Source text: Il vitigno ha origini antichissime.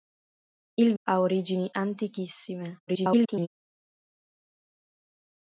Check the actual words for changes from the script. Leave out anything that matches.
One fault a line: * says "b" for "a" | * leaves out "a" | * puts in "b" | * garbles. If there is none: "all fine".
* leaves out "vitigno"
* garbles